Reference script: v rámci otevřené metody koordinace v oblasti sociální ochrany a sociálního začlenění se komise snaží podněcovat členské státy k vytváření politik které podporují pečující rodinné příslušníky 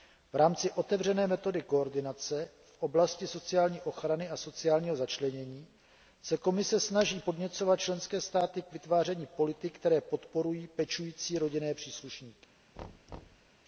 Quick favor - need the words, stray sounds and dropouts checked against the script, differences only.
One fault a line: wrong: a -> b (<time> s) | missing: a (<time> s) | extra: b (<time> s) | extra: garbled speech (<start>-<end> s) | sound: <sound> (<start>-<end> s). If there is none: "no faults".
sound: thud (12.8-13.5 s)